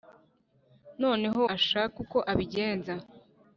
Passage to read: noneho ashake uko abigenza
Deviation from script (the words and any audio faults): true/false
false